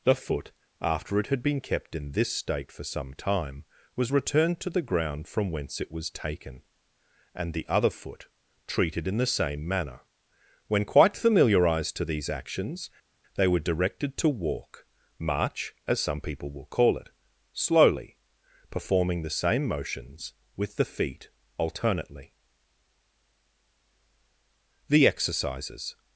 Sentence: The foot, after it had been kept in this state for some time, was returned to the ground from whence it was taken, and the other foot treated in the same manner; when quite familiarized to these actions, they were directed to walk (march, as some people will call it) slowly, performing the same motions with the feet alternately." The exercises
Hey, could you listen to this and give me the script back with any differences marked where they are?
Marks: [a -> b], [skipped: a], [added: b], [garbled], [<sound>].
The foot, after it had been kept in this state for some time, was returned to the ground from whence it was taken, and the other foot treated in the same manner; when quite familiarized to these actions, they were directed to walk (march, as some people will call it) slowly, performing the same motions with the feet alternately." The exercises